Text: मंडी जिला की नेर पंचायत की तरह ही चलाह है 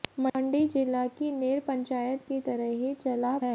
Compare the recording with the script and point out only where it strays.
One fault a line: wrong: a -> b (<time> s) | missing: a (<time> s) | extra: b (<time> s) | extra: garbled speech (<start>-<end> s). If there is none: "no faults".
no faults